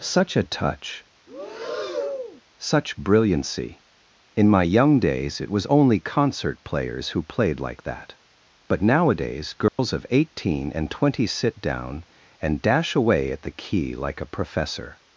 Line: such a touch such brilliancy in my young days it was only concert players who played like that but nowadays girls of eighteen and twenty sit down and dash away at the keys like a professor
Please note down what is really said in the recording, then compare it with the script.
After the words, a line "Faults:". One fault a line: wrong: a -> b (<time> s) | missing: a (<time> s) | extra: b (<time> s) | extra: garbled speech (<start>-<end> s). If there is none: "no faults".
such a touch such brilliancy in my young days it was only concert players who played like that but nowadays girls of eighteen and twenty sit down and dash away at the key like a professor
Faults:
wrong: keys -> key (13.5 s)